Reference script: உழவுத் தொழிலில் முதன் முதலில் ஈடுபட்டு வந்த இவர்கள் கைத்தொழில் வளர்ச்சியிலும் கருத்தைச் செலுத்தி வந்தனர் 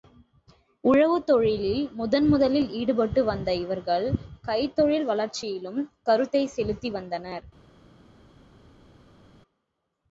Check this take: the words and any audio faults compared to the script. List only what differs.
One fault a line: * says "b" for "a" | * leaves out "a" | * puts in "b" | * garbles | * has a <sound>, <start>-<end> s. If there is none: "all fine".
all fine